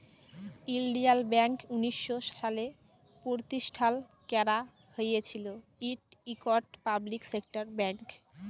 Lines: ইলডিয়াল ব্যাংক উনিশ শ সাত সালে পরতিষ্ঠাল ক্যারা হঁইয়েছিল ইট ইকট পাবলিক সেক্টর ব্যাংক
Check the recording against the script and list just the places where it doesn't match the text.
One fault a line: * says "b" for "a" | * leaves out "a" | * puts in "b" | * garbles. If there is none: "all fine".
* leaves out "সাত"